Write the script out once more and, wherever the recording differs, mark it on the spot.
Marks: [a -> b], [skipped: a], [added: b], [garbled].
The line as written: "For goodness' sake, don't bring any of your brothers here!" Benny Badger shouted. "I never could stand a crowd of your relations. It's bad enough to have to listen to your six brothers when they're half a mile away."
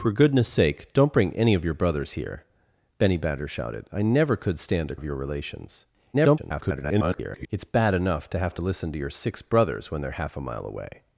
"For goodness' sake, don't bring any of your brothers here!" Benny Badger shouted. "I never could stand a [skipped: crowd] of your relations. [garbled] It's bad enough to have to listen to your six brothers when they're half a mile away."